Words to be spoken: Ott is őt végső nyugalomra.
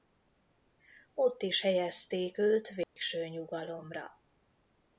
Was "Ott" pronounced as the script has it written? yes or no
yes